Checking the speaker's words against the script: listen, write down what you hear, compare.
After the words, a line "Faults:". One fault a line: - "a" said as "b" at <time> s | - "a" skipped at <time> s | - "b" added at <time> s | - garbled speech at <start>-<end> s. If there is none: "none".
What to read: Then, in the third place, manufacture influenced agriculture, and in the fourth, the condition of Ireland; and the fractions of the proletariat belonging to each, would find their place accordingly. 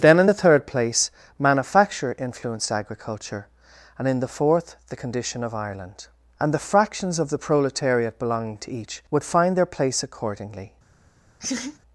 Then, in the third place, manufacture influenced agriculture, and in the fourth, the condition of Ireland; and the fractions of the proletariat belonging to each, would find their place accordingly.
Faults:
none